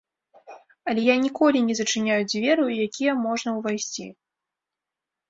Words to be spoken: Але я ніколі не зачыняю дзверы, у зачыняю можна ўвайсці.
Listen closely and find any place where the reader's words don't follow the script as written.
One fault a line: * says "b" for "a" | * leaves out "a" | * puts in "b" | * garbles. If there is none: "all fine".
* says "якія" for "зачыняю"